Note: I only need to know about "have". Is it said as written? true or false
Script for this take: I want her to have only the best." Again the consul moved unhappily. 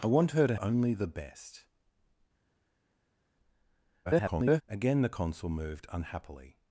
false